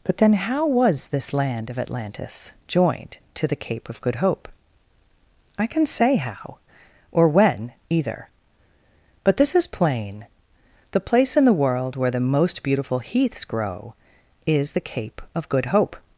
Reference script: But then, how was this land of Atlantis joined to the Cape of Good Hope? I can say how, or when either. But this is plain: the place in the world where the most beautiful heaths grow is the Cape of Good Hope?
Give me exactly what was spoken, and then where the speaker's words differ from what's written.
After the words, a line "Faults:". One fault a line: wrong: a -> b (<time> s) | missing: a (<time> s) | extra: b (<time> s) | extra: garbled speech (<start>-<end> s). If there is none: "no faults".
But then, how was this land of Atlantis joined to the Cape of Good Hope? I can say how, or when either. But this is plain: the place in the world where the most beautiful heaths grow is the Cape of Good Hope?
Faults:
no faults